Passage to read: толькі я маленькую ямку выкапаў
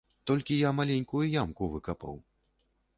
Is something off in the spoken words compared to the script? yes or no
no